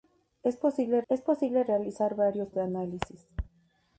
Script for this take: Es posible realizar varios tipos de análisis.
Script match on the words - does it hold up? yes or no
no